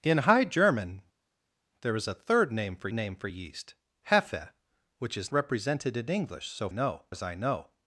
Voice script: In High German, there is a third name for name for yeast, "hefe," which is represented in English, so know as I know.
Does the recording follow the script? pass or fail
pass